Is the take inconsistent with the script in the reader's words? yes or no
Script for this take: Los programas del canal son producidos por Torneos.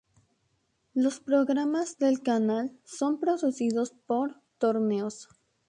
no